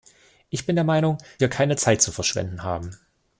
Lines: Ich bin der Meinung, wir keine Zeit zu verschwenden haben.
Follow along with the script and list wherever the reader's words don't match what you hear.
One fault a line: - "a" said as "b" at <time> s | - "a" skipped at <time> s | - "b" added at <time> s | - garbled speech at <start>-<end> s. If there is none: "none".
none